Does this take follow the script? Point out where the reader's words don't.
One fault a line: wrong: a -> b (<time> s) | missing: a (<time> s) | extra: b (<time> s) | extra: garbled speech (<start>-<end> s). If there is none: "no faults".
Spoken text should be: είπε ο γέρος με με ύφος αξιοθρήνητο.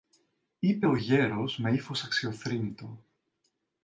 missing: με (1.7 s)